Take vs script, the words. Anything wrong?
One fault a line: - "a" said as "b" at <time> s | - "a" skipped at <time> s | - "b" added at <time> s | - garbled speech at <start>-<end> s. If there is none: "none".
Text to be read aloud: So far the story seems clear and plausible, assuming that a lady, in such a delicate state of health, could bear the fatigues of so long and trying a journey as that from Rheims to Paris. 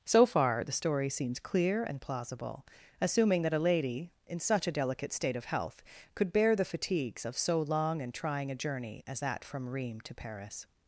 none